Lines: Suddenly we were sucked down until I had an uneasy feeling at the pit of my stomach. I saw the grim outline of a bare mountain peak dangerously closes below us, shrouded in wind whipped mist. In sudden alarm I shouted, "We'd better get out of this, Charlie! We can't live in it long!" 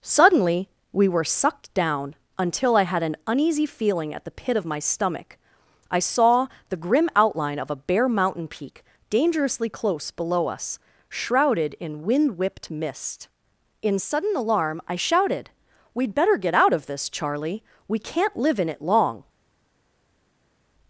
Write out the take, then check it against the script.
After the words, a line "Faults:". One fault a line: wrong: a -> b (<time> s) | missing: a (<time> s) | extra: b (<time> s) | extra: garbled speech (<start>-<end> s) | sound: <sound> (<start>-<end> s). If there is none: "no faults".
Suddenly we were sucked down until I had an uneasy feeling at the pit of my stomach. I saw the grim outline of a bare mountain peak dangerously close below us, shrouded in wind whipped mist. In sudden alarm I shouted, "We'd better get out of this, Charlie! We can't live in it long!"
Faults:
wrong: closes -> close (9.7 s)